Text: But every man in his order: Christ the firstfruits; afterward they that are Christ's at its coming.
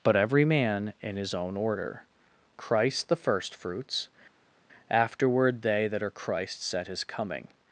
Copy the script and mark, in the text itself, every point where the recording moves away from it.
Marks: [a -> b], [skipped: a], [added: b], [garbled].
But every man in his [added: own] order: Christ the firstfruits; afterward they that are Christ's at [its -> his] coming.